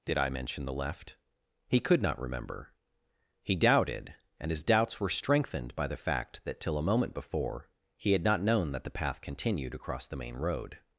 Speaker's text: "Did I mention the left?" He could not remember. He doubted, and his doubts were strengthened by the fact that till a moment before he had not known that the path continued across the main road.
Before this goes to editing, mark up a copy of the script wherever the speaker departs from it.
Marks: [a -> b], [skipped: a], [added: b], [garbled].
"Did I mention the left?" He could not remember. He doubted, and his doubts were strengthened by the fact that till a moment before he had not known that the path continued across the main road.